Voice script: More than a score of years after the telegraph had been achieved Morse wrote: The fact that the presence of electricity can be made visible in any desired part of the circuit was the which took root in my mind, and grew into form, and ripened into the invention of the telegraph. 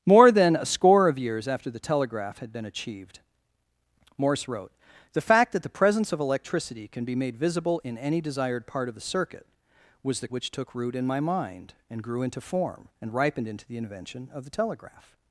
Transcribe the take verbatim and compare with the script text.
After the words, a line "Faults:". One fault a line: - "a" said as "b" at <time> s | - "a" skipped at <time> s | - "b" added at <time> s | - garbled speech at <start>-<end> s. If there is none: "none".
More than a score of years after the telegraph had been achieved Morse wrote: The fact that the presence of electricity can be made visible in any desired part of the circuit was the which took root in my mind, and grew into form, and ripened into the invention of the telegraph.
Faults:
none